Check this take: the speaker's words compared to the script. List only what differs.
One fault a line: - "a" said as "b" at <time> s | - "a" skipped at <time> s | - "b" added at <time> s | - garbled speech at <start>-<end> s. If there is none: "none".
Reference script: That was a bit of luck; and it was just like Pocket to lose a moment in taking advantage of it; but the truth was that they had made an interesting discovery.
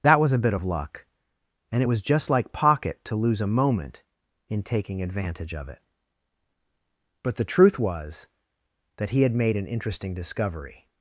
- "they" said as "he" at 9.1 s